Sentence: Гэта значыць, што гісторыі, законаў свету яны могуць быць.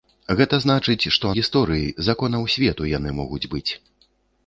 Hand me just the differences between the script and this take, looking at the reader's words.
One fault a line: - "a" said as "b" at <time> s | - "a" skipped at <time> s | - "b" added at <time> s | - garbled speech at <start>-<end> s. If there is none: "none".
none